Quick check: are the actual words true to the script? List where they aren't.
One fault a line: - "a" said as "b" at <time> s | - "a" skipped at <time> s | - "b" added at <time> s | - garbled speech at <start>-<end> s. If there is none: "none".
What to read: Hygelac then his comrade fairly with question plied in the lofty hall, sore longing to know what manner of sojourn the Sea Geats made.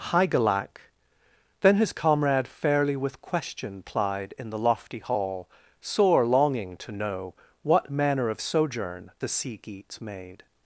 none